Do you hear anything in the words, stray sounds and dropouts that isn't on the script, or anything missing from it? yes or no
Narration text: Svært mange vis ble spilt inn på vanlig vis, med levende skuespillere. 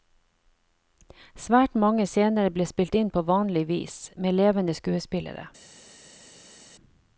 yes